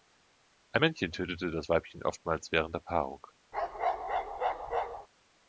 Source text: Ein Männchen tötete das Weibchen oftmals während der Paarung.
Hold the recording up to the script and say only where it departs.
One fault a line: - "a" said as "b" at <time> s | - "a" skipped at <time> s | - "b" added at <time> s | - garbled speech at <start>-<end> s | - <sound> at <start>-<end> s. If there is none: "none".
- bark at 3.5-5.1 s